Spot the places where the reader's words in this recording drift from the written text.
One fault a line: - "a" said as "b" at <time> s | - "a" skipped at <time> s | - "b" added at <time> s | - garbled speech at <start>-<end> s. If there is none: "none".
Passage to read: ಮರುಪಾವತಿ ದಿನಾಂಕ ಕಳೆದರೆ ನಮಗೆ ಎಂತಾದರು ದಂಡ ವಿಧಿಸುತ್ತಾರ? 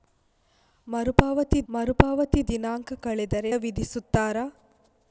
- "ಮರುಪಾವತಿ" added at 1.7 s
- "ನಮಗೆ ಎಂತಾದರು ದಂಡ" skipped at 3.5 s